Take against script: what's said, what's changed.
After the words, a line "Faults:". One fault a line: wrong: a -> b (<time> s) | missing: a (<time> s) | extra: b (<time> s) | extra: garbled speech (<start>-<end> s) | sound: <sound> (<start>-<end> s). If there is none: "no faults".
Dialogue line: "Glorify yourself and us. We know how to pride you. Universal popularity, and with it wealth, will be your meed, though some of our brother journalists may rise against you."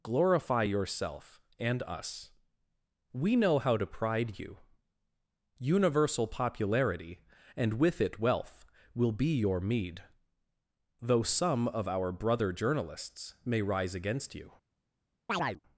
"Glorify yourself and us. We know how to pride you. Universal popularity, and with it wealth, will be your meed, though some of our brother journalists may rise against you."
Faults:
sound: chirp (15.3-15.6 s)